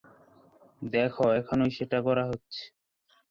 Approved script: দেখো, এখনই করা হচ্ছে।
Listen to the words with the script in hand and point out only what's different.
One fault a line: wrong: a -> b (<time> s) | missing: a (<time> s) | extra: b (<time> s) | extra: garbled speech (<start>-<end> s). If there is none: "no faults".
extra: সেটা (1.8 s)